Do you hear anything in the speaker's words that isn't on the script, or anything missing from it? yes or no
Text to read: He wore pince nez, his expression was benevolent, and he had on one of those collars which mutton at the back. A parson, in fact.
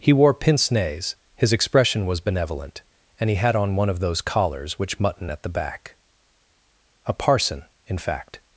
no